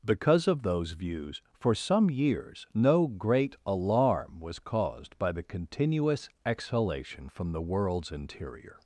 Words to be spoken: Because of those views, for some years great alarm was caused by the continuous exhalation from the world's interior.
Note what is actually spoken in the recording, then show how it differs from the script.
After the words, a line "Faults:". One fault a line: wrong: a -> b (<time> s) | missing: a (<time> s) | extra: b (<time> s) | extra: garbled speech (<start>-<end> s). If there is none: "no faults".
Because of those views, for some years no great alarm was caused by the continuous exhalation from the world's interior.
Faults:
extra: no (2.7 s)